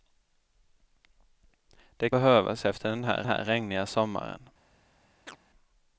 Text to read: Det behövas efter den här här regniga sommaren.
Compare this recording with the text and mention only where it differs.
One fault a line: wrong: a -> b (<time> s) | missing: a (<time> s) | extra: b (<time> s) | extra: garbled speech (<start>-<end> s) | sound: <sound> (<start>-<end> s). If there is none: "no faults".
sound: chirp (5.3-5.4 s)